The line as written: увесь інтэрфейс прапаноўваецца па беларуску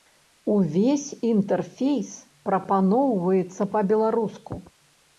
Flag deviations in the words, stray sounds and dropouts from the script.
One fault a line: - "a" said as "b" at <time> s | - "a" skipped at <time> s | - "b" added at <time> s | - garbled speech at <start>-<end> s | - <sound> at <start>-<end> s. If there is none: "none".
none